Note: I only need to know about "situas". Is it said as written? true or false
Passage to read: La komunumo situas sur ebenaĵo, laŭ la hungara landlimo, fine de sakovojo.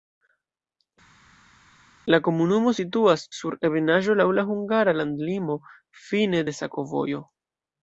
true